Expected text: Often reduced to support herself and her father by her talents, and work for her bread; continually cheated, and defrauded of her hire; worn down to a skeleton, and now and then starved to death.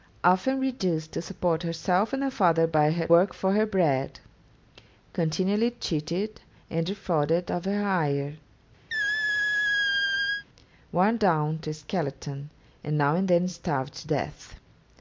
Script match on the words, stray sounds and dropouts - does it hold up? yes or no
no